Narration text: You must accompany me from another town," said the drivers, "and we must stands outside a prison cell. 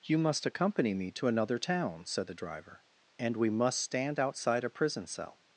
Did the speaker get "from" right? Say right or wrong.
wrong